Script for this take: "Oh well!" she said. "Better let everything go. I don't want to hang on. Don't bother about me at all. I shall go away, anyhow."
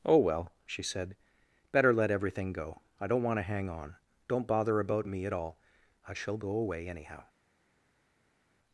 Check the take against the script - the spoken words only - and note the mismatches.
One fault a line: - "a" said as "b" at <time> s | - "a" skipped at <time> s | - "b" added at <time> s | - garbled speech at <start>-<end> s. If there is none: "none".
none